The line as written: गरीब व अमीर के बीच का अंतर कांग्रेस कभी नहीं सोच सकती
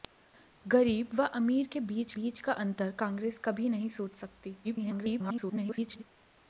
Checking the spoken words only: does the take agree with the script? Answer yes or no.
no